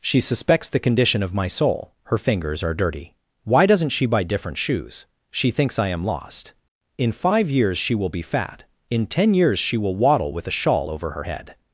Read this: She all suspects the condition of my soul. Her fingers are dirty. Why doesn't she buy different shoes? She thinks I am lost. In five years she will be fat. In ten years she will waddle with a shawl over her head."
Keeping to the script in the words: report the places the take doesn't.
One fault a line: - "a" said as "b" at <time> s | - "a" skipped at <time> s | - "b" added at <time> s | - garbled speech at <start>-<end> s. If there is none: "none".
- "all" skipped at 0.2 s